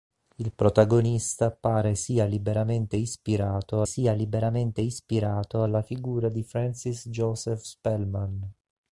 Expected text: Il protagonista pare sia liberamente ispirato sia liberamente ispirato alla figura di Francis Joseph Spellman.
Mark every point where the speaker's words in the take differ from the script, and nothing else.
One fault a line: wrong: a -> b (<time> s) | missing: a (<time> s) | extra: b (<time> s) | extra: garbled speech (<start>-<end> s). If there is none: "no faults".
no faults